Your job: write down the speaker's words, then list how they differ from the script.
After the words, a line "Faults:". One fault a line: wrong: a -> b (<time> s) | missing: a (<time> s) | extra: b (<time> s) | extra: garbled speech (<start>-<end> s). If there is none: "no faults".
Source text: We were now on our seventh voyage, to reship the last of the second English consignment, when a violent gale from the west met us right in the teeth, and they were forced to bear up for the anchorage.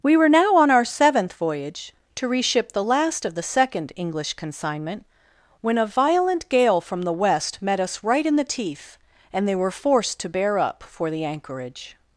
We were now on our seventh voyage, to reship the last of the second English consignment, when a violent gale from the west met us right in the teeth, and they were forced to bear up for the anchorage.
Faults:
no faults